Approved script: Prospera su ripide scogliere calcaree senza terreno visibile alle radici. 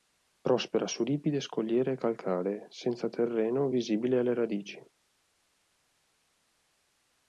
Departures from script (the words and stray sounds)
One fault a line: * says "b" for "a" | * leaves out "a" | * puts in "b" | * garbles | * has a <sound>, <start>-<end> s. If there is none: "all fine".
all fine